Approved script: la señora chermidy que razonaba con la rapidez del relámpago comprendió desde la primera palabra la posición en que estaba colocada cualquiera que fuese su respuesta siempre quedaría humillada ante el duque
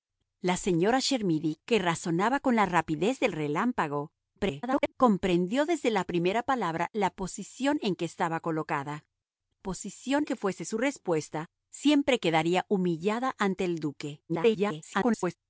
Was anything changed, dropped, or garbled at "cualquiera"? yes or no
yes